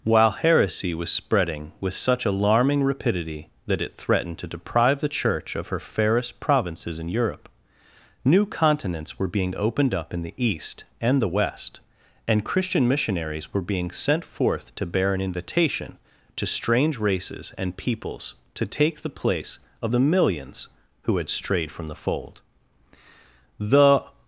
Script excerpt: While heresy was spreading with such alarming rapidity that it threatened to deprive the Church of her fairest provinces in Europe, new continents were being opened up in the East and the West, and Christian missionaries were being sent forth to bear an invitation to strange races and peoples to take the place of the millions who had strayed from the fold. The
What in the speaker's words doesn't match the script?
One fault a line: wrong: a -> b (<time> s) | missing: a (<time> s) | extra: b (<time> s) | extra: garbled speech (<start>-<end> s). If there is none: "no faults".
no faults